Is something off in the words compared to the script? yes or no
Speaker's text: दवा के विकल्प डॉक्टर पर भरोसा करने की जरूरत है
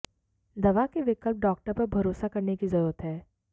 no